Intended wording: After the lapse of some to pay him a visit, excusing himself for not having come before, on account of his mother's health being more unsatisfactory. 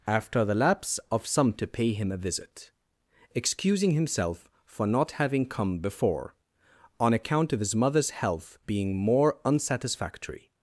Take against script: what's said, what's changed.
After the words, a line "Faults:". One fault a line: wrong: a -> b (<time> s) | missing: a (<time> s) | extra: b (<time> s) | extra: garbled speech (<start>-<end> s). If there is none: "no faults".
After the lapse of some to pay him a visit, excusing himself for not having come before, on account of his mother's health being more unsatisfactory.
Faults:
no faults